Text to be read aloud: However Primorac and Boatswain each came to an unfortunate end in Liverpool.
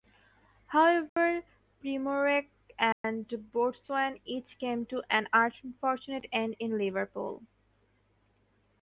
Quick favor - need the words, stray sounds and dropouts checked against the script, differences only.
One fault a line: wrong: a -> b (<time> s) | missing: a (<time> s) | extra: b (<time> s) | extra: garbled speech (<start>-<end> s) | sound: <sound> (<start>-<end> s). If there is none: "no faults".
sound: dropout (1.1-1.2 s)
sound: dropout (2.9-3.0 s)